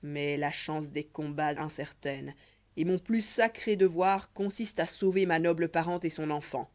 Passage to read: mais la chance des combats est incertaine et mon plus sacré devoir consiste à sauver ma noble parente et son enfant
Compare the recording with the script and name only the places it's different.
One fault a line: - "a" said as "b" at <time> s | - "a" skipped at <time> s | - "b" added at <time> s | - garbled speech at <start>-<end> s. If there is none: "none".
- "est" skipped at 1.5 s